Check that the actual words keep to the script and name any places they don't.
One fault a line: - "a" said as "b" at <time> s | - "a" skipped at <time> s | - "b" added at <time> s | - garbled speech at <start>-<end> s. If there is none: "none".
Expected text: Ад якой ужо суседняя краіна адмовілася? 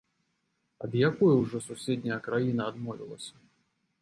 none